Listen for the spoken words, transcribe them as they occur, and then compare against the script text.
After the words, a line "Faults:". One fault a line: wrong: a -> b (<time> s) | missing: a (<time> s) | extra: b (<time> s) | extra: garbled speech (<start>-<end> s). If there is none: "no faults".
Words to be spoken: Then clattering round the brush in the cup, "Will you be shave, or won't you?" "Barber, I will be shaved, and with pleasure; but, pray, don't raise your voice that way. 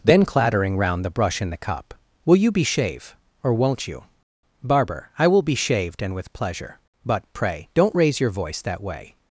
Then clattering round the brush in the cup, "Will you be shave, or won't you?" "Barber, I will be shaved, and with pleasure; but, pray, don't raise your voice that way.
Faults:
no faults